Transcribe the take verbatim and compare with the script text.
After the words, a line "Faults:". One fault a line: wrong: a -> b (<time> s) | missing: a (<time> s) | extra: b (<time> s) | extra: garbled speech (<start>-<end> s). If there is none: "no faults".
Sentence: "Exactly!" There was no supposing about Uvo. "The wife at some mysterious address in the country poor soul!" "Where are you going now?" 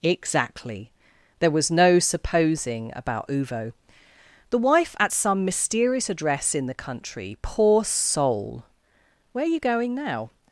"Exactly!" There was no supposing about Uvo. "The wife at some mysterious address in the country poor soul!" "Where are you going now?"
Faults:
no faults